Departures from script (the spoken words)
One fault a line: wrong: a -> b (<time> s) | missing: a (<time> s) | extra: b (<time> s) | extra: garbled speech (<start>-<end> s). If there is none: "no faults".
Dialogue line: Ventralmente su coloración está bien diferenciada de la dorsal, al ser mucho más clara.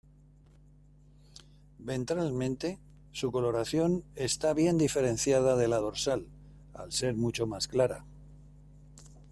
no faults